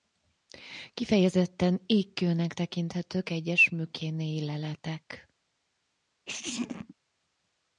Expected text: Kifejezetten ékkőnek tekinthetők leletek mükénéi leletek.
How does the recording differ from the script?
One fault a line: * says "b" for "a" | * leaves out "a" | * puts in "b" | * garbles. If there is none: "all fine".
* says "egyes" for "leletek"